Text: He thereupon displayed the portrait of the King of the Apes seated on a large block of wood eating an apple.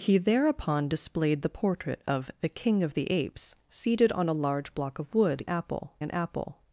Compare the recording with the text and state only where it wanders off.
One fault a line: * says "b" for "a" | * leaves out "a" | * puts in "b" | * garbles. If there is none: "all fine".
* says "apple" for "eating"